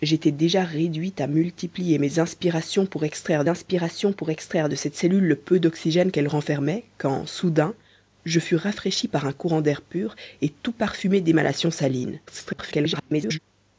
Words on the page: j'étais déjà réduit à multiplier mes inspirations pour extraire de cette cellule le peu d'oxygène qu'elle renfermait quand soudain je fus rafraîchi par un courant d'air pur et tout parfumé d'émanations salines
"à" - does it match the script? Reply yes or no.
yes